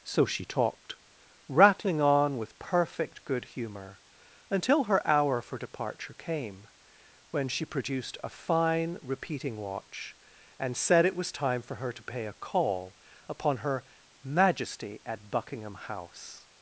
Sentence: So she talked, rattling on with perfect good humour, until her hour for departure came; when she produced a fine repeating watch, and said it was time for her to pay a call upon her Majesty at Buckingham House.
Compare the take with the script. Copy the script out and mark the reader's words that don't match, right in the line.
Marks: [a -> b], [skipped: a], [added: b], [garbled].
So she talked, rattling on with perfect good humour, until her hour for departure came; when she produced a fine repeating watch, and said it was time for her to pay a call upon her Majesty at Buckingham House.